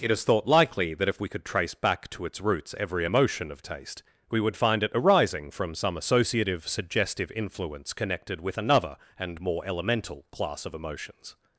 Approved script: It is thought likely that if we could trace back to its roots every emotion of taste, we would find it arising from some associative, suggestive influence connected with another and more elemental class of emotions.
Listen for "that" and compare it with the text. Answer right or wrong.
right